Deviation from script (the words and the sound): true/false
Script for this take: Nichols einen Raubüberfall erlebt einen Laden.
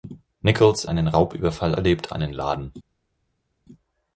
false